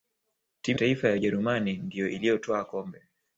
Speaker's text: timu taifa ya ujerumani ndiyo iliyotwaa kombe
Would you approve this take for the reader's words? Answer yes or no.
yes